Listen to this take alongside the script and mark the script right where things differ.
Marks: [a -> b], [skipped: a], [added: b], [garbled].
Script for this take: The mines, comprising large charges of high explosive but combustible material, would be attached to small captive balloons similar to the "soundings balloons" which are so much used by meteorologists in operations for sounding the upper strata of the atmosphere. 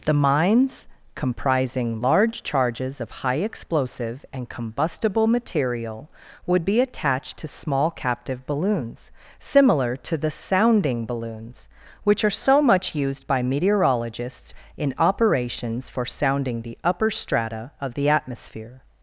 The mines, comprising large charges of high explosive [but -> and] combustible material, would be attached to small captive balloons similar to the ["soundings -> sounding] balloons" which are so much used by meteorologists in operations for sounding the upper strata of the atmosphere.